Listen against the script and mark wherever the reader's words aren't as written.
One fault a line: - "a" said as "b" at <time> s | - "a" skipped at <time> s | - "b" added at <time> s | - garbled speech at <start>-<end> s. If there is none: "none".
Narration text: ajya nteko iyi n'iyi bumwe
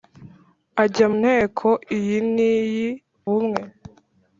none